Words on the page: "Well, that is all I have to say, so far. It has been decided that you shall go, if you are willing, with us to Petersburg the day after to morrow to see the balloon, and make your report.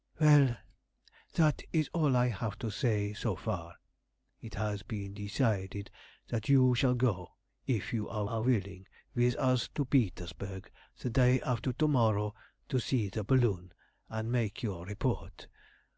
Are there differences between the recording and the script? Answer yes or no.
yes